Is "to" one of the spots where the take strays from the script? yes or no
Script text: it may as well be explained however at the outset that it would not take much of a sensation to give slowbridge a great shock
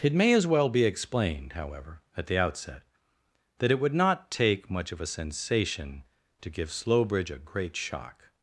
no